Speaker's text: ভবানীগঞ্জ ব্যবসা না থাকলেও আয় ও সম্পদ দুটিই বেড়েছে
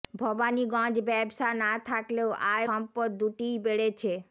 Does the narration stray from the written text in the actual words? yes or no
yes